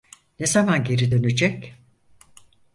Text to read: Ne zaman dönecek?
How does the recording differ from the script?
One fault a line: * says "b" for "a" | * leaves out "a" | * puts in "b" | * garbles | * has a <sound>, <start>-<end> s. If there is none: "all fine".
* puts in "geri"